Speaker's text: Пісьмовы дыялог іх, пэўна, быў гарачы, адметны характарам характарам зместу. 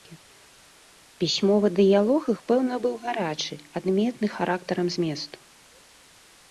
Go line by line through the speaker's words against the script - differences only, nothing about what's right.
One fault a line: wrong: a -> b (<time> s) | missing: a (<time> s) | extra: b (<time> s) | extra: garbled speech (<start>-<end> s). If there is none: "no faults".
missing: характарам (4.9 s)